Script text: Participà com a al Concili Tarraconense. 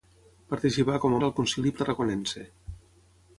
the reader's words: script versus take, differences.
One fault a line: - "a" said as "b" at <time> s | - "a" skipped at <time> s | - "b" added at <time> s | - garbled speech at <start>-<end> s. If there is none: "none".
none